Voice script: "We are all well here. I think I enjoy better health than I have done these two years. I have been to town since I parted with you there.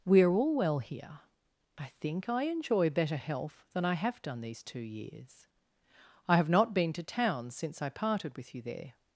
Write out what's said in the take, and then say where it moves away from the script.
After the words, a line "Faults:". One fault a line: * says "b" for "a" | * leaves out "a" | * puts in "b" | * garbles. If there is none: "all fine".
"We are all well here. I think I enjoy better health than I have done these two years. I have not been to town since I parted with you there.
Faults:
* puts in "not"